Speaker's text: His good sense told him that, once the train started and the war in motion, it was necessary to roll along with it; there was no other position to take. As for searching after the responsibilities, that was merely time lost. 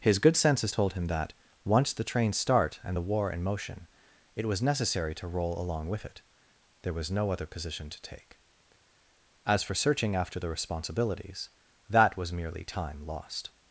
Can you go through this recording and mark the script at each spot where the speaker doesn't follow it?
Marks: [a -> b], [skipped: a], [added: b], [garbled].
His good [sense -> senses] told him that, once the train [started -> start] and the war in motion, it was necessary to roll along with it; there was no other position to take. As for searching after the responsibilities, that was merely time lost.